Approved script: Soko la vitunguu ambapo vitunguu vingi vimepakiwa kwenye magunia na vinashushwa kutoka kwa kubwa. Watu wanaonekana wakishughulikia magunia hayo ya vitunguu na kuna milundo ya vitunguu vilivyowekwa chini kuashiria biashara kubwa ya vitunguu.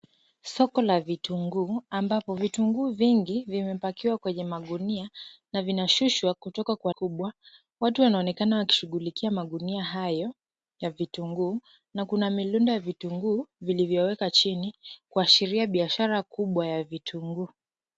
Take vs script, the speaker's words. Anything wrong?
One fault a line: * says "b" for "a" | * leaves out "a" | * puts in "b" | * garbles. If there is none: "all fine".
all fine